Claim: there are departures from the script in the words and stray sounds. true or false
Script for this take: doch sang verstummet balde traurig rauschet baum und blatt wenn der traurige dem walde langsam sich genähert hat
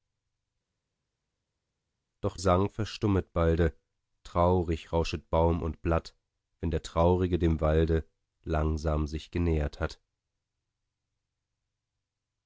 false